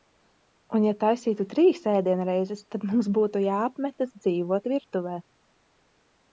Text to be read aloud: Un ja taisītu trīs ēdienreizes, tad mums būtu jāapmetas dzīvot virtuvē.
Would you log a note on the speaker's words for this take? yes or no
no